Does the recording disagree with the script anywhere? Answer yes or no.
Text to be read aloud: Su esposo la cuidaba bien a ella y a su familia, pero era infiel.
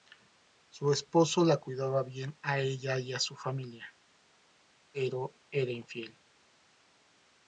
no